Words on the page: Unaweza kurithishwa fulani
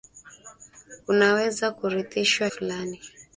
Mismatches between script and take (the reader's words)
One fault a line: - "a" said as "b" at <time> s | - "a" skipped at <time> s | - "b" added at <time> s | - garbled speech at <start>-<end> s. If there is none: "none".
none